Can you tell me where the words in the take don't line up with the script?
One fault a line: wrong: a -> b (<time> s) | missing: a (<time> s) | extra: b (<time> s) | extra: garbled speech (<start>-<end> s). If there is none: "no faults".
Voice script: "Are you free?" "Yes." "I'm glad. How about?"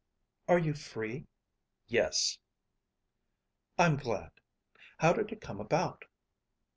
extra: did it come (5.1 s)